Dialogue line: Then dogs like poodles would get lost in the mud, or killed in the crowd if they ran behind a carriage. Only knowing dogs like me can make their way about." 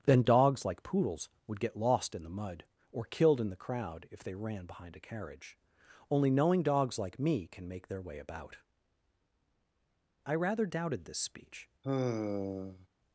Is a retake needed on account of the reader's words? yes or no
yes